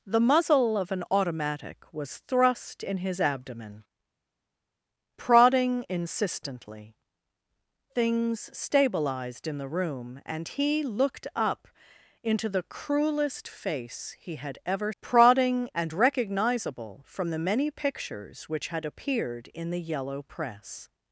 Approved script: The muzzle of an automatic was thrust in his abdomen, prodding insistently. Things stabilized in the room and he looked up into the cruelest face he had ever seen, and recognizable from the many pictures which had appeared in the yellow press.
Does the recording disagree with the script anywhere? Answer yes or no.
yes